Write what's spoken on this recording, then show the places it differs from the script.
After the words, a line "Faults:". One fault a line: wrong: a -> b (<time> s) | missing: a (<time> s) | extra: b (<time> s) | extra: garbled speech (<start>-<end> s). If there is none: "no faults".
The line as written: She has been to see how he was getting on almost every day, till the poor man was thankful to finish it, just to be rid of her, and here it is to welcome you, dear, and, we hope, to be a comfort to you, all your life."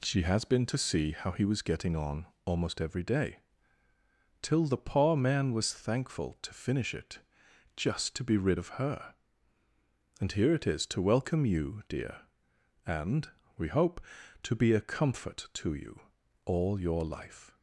She has been to see how he was getting on almost every day, till the poor man was thankful to finish it, just to be rid of her, and here it is to welcome you, dear, and, we hope, to be a comfort to you, all your life."
Faults:
no faults